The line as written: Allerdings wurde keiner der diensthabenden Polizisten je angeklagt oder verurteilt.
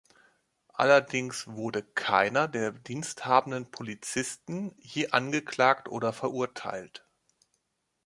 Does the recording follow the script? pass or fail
pass